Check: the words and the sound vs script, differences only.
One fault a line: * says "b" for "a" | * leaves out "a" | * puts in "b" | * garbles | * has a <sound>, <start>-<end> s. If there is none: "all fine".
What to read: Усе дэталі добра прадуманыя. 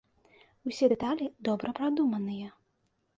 all fine